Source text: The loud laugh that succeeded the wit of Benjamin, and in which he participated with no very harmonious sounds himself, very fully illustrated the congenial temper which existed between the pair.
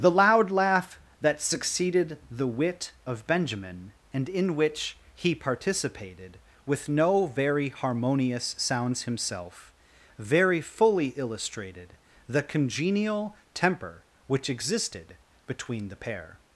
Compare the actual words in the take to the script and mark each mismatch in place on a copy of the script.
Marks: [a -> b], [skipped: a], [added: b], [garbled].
The loud laugh that succeeded the wit of Benjamin, and in which he participated with no very harmonious sounds himself, very fully illustrated the congenial temper which existed between the pair.